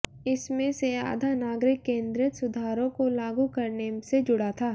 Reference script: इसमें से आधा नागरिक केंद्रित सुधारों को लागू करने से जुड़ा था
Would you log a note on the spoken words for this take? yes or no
no